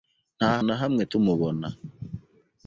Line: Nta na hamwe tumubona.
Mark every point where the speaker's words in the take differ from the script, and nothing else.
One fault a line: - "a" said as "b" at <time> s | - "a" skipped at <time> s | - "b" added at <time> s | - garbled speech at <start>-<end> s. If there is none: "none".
none